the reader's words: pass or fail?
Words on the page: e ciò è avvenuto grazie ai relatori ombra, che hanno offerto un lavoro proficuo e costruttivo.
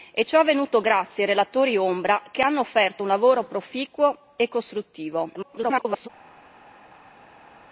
fail